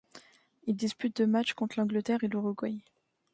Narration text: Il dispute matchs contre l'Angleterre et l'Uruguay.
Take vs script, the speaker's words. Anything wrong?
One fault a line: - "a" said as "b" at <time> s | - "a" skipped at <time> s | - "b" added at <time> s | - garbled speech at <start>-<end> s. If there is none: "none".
- "deux" added at 1.2 s